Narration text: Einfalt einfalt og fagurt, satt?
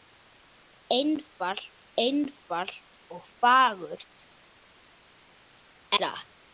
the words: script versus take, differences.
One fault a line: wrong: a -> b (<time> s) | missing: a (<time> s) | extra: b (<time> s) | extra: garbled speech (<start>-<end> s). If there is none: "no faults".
no faults